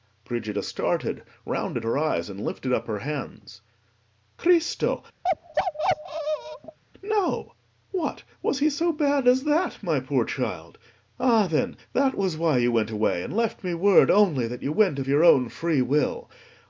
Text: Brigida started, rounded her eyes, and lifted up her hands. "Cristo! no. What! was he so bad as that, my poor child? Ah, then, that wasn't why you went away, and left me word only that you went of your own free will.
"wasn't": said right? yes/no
no